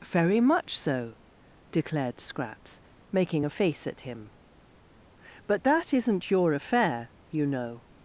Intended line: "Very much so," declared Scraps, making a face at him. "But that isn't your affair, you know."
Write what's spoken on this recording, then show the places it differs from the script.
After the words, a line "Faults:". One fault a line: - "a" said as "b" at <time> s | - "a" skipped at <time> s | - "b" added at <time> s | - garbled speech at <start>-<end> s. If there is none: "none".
"Very much so," declared Scraps, making a face at him. "But that isn't your affair, you know."
Faults:
none